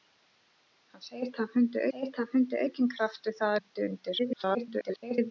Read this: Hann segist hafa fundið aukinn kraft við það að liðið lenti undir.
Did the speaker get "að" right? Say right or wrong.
wrong